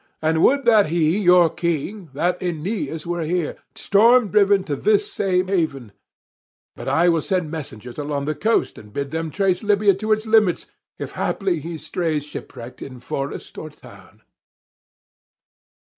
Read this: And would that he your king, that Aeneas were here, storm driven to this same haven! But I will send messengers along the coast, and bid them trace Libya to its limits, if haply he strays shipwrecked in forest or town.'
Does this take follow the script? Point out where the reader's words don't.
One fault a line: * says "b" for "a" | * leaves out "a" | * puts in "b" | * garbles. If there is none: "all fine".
all fine